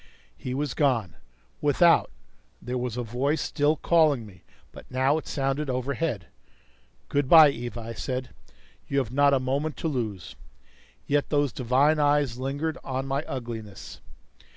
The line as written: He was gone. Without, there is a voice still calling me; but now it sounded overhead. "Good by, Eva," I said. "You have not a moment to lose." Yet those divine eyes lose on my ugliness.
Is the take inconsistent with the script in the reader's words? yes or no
yes